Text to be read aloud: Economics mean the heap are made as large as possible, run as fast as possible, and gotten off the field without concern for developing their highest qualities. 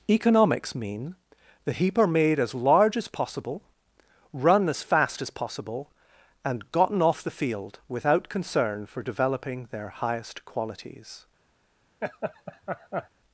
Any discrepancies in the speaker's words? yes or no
no